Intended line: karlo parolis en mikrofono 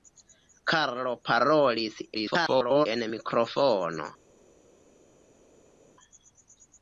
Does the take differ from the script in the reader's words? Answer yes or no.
yes